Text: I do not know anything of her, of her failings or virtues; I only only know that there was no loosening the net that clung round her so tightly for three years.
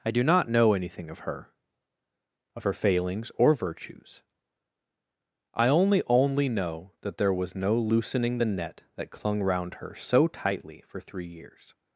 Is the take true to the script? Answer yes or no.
yes